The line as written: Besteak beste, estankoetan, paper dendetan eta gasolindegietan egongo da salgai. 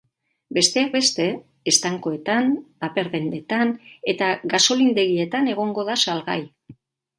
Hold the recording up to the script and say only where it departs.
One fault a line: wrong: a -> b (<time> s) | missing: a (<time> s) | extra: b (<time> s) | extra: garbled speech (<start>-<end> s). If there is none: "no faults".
no faults